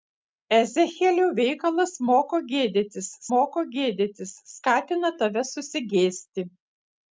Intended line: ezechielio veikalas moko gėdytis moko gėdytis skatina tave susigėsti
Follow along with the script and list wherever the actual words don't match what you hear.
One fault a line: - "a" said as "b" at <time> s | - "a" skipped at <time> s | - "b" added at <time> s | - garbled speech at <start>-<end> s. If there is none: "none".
none